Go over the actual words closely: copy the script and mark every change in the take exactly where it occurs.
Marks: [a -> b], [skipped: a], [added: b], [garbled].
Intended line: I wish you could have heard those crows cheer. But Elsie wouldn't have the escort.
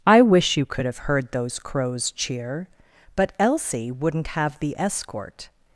I wish you could have heard those crows cheer. But Elsie wouldn't have the escort.